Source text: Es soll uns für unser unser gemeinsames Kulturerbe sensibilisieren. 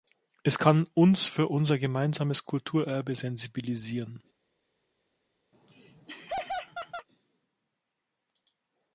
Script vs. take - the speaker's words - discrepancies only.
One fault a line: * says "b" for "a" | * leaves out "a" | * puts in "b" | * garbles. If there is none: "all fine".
* says "kann" for "soll"
* leaves out "unser"